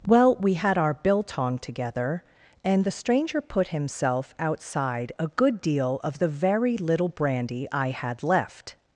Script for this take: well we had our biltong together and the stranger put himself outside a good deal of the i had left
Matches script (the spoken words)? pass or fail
fail